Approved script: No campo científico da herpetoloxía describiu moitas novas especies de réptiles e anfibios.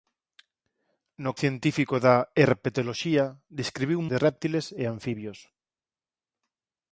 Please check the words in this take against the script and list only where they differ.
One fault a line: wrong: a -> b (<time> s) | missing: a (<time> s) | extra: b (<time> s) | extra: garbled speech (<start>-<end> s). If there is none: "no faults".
missing: campo (1.3 s)
missing: moitas novas especies (4.0 s)